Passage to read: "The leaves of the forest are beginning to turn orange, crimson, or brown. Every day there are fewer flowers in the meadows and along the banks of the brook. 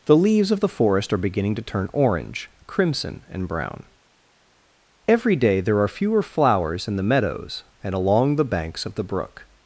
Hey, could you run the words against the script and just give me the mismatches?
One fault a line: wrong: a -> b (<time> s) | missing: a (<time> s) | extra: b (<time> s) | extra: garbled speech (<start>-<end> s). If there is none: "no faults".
wrong: or -> and (3.3 s)